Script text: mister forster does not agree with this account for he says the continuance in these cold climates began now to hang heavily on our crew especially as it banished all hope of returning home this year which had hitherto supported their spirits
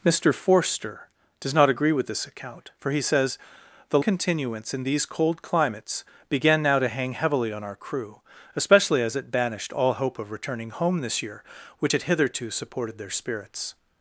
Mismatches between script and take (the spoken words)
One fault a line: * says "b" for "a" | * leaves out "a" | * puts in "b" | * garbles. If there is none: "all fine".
all fine